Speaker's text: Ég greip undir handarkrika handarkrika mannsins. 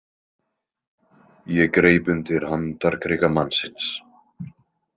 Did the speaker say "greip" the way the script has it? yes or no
yes